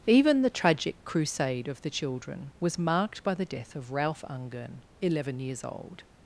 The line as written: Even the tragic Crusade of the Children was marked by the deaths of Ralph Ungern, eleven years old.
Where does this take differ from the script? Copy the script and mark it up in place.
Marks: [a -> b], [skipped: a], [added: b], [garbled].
Even the tragic Crusade of the Children was marked by the [deaths -> death] of Ralph Ungern, eleven years old.